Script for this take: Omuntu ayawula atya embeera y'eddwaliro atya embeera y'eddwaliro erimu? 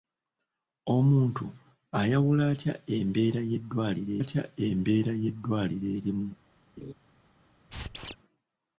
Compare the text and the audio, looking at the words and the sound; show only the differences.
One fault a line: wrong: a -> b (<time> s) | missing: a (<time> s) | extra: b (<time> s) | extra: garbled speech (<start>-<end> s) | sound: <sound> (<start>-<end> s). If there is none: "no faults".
sound: laugh (6.8-6.9 s)
sound: squeak (7.7-8.2 s)